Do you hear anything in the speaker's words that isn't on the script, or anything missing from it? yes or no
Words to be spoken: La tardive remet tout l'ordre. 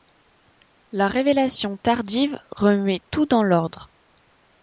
yes